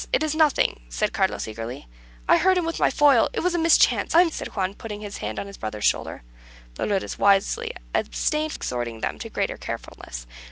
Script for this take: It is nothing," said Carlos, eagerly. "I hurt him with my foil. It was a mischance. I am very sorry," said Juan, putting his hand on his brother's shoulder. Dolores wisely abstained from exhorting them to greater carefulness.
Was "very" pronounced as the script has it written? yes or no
no